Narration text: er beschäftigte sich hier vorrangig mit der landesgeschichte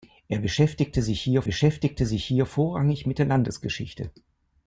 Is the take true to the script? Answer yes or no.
no